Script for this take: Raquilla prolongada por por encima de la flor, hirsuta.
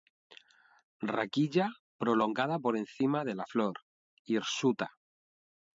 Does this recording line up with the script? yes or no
no